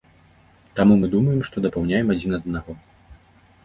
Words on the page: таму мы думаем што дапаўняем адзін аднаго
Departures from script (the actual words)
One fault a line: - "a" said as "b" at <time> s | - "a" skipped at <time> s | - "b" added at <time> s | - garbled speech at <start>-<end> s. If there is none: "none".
none